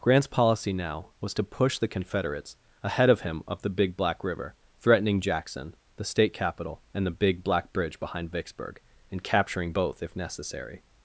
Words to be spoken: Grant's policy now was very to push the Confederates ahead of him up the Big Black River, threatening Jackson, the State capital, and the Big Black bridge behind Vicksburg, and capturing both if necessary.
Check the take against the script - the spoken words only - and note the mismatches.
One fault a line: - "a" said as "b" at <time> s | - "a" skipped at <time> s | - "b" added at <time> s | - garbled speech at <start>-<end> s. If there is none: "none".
- "very" skipped at 1.3 s